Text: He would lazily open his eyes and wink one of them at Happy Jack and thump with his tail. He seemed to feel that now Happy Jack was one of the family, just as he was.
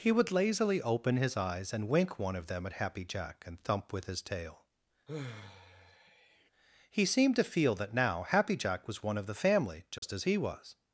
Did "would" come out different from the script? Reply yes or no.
no